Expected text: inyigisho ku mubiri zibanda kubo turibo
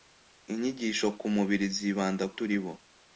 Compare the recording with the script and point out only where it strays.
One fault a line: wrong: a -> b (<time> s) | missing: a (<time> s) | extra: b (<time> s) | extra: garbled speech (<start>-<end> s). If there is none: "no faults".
missing: kubo (2.2 s)